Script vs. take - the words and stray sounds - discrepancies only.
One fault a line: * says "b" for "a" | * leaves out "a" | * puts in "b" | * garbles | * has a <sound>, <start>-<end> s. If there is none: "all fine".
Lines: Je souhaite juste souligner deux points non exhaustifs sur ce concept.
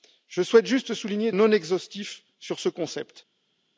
* leaves out "deux points"